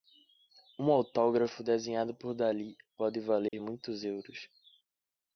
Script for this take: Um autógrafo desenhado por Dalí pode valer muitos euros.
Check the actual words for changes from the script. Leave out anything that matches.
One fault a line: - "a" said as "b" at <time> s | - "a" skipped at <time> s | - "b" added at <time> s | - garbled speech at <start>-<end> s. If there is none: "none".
none